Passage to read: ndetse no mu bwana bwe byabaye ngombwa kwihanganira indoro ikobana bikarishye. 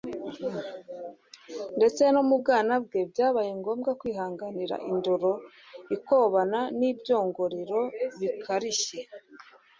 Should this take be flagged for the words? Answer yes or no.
yes